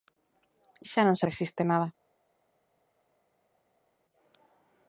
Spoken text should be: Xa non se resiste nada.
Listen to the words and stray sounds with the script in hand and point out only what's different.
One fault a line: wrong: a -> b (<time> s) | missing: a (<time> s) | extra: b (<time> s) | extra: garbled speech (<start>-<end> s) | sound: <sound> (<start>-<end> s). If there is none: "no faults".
no faults